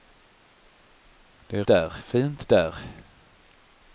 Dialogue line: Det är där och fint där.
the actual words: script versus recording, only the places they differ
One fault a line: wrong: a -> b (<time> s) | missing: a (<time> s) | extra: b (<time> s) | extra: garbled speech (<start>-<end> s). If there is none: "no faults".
no faults